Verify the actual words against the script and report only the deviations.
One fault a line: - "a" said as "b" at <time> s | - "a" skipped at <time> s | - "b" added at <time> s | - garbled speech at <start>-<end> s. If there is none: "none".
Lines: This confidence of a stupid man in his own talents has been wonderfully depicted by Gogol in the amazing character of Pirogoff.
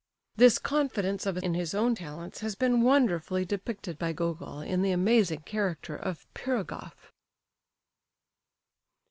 - "stupid man" skipped at 1.4 s